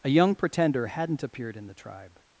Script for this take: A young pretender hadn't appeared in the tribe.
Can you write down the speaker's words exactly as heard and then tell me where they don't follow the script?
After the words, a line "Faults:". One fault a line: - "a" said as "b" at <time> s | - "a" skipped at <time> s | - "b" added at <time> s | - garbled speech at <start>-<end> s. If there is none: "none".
A young pretender hadn't appeared in the tribe.
Faults:
none